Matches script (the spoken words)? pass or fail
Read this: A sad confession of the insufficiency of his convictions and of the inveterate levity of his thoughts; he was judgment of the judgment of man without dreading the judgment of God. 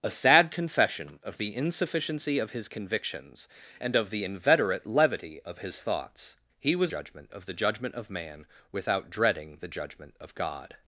pass